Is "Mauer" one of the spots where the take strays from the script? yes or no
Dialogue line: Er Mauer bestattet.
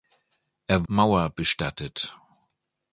no